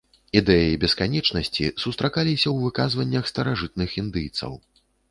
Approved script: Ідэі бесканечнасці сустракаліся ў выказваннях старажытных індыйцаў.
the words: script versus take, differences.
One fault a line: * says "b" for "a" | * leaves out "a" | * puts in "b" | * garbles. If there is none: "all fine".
all fine